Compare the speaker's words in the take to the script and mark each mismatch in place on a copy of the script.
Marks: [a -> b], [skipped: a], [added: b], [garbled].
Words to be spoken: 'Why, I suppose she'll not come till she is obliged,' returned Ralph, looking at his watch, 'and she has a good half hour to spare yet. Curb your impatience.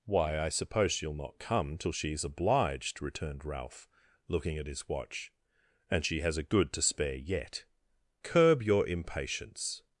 'Why, I suppose she'll not come till she is obliged,' returned Ralph, looking at his watch, 'and she has a good [skipped: half hour] to spare yet. Curb your impatience.